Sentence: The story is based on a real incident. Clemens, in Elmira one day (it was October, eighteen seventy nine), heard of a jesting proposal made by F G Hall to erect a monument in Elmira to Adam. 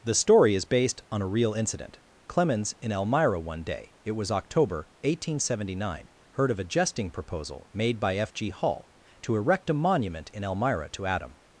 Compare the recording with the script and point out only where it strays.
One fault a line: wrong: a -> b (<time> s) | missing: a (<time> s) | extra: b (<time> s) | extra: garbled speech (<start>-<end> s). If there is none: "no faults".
no faults